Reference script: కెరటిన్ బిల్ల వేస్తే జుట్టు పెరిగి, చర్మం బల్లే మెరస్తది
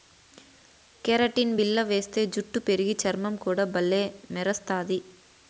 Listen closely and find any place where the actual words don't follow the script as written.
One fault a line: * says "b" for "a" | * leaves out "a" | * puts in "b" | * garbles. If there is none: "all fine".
* puts in "కూడా"